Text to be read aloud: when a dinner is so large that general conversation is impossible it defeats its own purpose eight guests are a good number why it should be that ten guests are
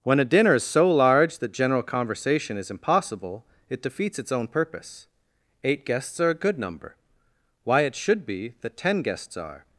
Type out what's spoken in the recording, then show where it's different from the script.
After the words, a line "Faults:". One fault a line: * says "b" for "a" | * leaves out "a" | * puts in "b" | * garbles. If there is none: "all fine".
when a dinner is so large that general conversation is impossible it defeats its own purpose eight guests are a good number why it should be that ten guests are
Faults:
all fine